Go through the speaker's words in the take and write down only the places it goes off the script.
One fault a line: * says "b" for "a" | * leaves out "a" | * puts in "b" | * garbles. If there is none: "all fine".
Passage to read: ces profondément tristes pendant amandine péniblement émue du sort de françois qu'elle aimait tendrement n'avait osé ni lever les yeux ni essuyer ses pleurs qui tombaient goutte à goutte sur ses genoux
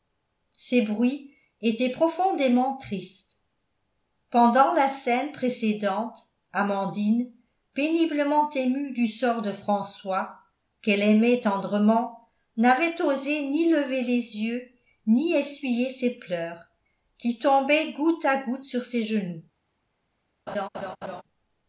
* puts in "bruits étaient"
* puts in "la scène précédente"